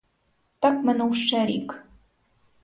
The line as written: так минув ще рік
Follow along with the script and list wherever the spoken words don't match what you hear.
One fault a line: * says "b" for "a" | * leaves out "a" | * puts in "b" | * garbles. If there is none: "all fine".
all fine